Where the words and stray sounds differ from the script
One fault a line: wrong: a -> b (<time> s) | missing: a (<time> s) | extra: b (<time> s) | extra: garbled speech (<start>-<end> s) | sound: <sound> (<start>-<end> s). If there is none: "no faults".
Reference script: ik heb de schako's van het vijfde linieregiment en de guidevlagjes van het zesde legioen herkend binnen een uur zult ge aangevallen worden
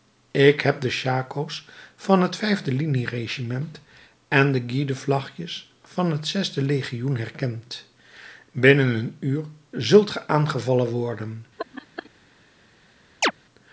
sound: laugh (11.6-12.1 s)
sound: chirp (13.2-13.3 s)